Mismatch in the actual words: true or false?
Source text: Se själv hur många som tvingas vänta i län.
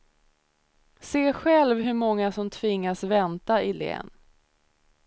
false